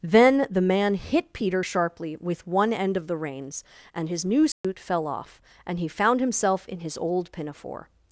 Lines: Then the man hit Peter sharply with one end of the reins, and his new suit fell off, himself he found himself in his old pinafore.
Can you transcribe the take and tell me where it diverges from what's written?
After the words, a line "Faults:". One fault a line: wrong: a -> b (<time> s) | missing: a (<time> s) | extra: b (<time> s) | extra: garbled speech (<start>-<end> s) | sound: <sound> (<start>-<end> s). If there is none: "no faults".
Then the man hit Peter sharply with one end of the reins, and his new suit fell off, and he found himself in his old pinafore.
Faults:
sound: dropout (4.5-4.6 s)
wrong: himself -> and (5.7 s)